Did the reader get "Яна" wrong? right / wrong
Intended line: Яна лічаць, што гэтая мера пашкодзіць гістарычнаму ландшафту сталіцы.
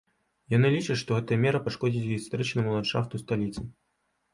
wrong